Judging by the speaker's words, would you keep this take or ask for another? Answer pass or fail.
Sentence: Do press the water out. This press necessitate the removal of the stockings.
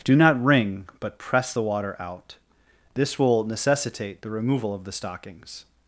fail